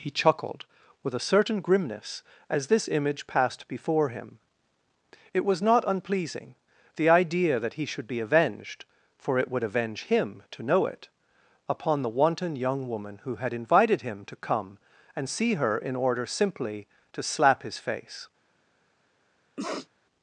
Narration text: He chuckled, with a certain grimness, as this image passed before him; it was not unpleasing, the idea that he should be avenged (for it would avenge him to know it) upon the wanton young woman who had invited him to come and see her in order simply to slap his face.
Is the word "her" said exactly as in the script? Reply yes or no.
yes